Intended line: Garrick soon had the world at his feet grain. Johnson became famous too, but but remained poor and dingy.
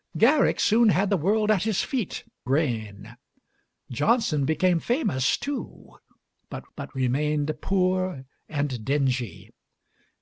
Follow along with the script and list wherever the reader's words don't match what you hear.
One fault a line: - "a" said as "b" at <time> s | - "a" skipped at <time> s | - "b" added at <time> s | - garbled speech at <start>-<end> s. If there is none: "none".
none